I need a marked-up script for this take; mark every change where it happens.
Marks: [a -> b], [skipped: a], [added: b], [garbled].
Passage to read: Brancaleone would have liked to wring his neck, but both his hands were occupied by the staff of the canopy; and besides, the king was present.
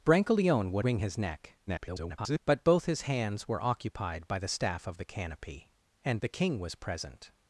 Brancaleone would [skipped: have liked to] wring his neck, [garbled] but both his hands were occupied by the staff of the canopy; and [skipped: besides,] the king was present.